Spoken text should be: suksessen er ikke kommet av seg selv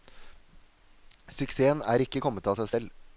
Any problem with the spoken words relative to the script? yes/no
no